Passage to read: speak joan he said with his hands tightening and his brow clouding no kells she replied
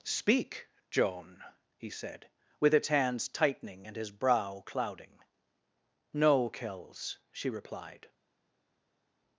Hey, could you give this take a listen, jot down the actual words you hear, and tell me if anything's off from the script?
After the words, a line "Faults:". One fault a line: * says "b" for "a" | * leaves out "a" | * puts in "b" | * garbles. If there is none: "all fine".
speak joan he said with its hands tightening and his brow clouding no kells she replied
Faults:
* says "its" for "his"